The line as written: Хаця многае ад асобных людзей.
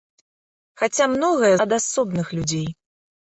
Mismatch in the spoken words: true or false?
false